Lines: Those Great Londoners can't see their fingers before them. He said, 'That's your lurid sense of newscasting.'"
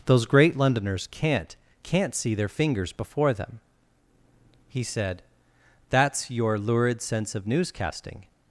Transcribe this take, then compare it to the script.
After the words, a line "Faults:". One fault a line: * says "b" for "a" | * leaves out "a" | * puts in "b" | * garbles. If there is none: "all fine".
Those Great Londoners can't can't see their fingers before them. He said, 'That's your lurid sense of newscasting.'"
Faults:
* puts in "can't"